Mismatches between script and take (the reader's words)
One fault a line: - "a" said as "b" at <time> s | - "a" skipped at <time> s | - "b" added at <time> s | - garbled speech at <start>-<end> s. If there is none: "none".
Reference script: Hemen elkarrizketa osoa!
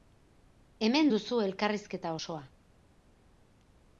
- "duzu" added at 1.1 s